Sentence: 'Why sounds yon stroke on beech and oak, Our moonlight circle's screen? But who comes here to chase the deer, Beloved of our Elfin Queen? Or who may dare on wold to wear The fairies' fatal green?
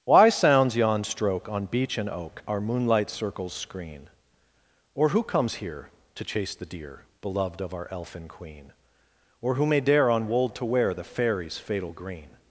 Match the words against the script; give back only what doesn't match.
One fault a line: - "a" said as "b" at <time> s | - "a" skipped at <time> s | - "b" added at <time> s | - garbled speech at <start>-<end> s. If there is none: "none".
- "But" said as "Or" at 5.0 s